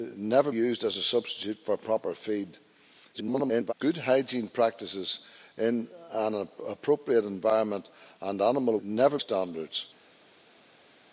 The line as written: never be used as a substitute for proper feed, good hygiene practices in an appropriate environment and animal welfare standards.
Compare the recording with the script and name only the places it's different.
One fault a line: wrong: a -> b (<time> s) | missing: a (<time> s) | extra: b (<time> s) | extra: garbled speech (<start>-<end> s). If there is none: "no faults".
missing: be (0.5 s)
extra: garbled speech (3.1-3.7 s)
wrong: welfare -> never (8.8 s)